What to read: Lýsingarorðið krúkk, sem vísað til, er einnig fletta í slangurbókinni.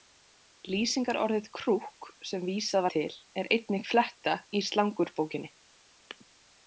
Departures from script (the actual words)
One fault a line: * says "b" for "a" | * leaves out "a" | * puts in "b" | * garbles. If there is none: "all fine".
all fine